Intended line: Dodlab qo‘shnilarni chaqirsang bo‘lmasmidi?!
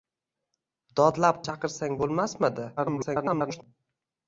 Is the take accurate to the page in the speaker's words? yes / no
no